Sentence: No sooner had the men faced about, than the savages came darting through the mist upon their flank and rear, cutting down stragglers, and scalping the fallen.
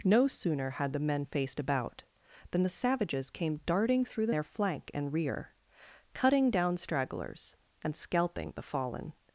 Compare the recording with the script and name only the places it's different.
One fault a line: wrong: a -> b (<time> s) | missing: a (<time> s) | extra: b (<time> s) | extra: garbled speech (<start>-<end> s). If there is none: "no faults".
missing: mist upon (4.3 s)